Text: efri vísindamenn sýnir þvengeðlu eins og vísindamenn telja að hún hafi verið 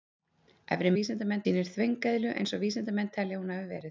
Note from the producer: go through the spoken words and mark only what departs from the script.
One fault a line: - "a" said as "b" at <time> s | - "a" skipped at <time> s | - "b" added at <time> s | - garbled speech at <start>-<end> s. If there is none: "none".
none